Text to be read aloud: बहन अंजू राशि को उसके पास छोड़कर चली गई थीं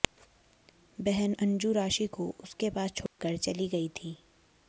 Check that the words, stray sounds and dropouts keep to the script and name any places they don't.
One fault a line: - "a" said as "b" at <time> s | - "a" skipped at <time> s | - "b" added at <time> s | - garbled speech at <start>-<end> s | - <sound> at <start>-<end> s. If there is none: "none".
- dropout at 3.1-3.2 s